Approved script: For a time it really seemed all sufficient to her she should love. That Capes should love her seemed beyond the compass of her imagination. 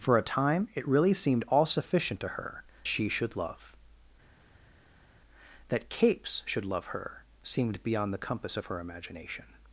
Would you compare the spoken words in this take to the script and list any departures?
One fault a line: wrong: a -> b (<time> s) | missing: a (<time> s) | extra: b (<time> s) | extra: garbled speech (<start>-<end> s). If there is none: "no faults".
no faults